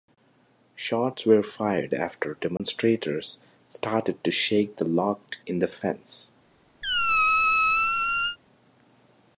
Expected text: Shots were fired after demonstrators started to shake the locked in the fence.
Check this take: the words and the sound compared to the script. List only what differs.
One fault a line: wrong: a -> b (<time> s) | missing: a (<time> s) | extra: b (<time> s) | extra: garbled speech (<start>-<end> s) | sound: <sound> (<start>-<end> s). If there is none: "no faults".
sound: dropout (2.6-2.6 s)
sound: squeak (6.8-8.4 s)